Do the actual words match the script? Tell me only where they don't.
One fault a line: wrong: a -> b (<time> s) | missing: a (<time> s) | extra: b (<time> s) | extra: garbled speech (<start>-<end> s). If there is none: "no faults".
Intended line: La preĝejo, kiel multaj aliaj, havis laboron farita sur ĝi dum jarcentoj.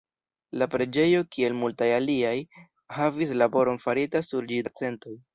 missing: dum (4.6 s)